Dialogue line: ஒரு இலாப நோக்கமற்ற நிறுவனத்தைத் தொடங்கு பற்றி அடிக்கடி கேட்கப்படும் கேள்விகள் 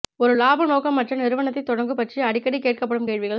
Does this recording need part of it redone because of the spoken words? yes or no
no